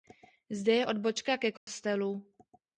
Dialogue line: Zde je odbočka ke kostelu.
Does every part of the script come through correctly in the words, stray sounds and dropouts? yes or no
no